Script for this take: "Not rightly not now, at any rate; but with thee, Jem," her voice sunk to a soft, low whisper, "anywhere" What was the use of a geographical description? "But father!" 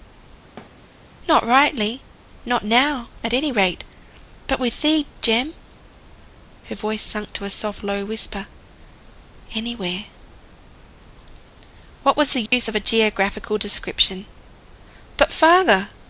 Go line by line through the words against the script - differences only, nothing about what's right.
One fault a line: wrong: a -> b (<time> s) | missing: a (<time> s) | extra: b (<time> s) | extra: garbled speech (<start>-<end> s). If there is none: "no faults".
no faults